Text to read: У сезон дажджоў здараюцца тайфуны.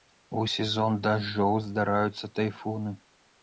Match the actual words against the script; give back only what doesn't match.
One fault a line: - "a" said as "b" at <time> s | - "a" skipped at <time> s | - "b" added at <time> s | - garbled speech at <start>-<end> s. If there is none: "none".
none